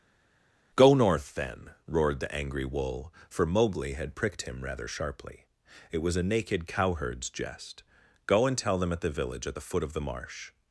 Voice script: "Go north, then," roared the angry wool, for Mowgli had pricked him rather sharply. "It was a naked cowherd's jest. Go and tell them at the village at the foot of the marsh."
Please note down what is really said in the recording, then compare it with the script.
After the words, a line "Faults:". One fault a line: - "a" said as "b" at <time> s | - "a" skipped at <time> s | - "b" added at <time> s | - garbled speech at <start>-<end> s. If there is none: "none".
"Go north, then," roared the angry wool, for Mowgli had pricked him rather sharply. "It was a naked cowherd's jest. Go and tell them at the village at the foot of the marsh."
Faults:
none